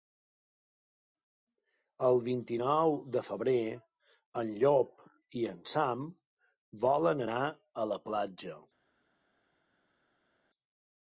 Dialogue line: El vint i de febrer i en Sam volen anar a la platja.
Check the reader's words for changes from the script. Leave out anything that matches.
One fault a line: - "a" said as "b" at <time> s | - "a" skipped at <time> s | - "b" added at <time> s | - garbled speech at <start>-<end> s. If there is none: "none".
- "nou" added at 2.6 s
- "en Llop" added at 4.4 s